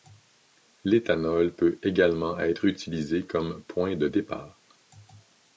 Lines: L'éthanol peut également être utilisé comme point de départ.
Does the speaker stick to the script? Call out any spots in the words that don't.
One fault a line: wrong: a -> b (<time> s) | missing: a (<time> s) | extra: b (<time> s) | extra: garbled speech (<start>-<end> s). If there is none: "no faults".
no faults